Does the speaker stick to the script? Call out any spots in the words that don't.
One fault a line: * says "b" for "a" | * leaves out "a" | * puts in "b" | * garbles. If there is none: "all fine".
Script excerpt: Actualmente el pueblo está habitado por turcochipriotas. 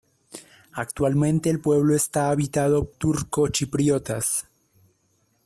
* leaves out "por"